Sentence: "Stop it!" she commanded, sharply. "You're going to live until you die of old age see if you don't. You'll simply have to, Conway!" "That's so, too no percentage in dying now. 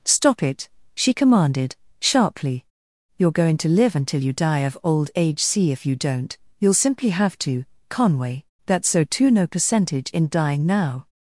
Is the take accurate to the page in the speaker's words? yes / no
yes